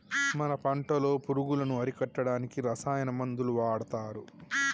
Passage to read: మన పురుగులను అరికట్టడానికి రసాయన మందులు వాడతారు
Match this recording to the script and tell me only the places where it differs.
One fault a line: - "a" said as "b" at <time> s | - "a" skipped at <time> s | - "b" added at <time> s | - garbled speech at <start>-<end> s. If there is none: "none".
- "పంటలో" added at 0.6 s